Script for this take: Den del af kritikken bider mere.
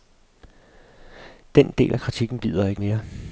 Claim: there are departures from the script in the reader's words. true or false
true